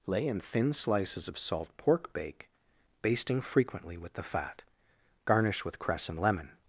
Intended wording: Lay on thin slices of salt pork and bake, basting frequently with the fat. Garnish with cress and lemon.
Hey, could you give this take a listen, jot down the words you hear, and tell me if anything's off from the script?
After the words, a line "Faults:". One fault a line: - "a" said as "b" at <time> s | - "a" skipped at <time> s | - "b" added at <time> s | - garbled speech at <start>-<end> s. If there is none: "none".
Lay in thin slices of salt pork bake, basting frequently with the fat. Garnish with cress and lemon.
Faults:
- "on" said as "in" at 0.3 s
- "and" skipped at 2.1 s